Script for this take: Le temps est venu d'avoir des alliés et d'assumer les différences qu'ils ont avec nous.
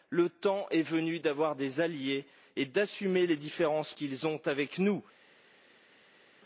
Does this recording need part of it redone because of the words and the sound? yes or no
no